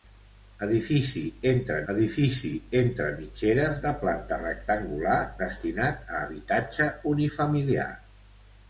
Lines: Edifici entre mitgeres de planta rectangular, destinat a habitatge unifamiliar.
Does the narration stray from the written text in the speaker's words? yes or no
yes